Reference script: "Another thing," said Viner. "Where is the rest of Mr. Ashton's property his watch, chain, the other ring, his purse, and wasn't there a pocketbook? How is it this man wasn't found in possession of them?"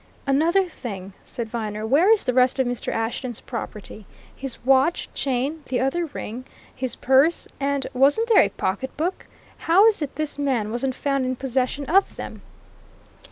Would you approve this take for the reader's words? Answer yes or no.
yes